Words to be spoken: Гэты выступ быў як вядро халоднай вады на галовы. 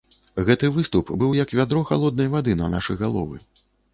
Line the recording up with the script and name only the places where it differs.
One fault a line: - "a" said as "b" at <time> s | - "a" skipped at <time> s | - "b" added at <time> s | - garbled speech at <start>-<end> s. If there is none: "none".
- "нашы" added at 2.8 s